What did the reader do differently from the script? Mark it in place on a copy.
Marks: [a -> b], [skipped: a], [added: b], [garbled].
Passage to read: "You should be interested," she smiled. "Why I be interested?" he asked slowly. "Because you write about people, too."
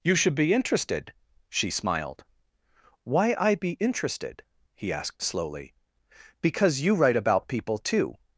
"You should be interested," she smiled. "Why I be interested?" he asked slowly. "Because you write about people, too."